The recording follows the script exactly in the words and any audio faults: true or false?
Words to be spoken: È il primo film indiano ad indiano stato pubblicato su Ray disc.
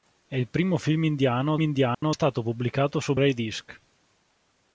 false